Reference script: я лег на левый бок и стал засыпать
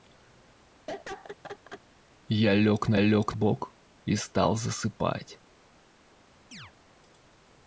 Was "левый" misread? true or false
true